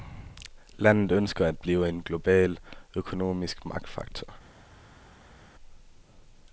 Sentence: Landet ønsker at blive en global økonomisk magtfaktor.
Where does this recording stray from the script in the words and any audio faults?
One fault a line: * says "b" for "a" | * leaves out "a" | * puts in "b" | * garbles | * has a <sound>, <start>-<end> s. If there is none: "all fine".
all fine